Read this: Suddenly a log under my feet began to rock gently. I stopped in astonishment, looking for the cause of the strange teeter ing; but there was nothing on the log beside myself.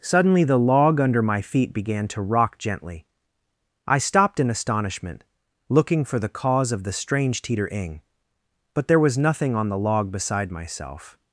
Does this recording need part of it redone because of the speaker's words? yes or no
yes